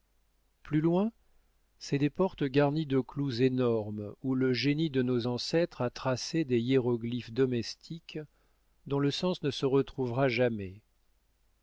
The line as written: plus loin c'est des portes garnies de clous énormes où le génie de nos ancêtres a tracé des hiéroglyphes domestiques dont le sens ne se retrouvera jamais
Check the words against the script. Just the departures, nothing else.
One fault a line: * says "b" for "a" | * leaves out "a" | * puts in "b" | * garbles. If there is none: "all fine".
all fine